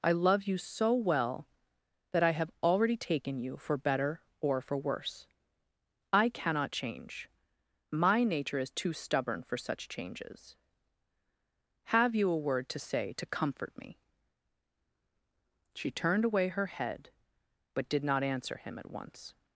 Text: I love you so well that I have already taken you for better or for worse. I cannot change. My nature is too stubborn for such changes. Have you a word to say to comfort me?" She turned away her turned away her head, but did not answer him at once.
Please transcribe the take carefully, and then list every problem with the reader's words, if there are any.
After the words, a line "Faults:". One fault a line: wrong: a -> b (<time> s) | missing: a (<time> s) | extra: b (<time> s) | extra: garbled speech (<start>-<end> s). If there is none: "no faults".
I love you so well that I have already taken you for better or for worse. I cannot change. My nature is too stubborn for such changes. Have you a word to say to comfort me?" She turned away her head, but did not answer him at once.
Faults:
missing: turned away her (16.7 s)